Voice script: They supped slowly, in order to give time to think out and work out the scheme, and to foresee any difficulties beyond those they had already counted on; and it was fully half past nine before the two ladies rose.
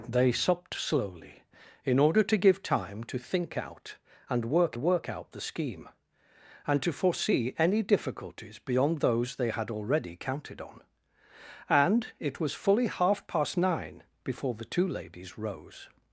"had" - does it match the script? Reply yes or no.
yes